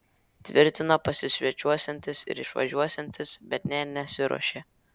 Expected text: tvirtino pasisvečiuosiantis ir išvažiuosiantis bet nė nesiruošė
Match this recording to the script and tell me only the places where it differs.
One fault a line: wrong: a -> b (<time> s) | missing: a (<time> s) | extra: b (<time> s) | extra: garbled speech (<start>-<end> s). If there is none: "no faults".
no faults